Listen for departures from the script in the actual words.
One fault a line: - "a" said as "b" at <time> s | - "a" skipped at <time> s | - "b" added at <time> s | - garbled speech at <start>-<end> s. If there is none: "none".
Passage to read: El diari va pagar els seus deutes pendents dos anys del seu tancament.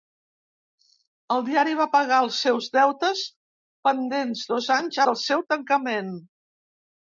none